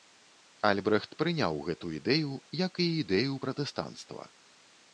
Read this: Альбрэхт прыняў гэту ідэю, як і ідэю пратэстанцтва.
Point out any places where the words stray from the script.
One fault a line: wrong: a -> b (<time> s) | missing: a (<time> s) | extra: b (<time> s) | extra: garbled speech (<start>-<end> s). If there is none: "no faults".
no faults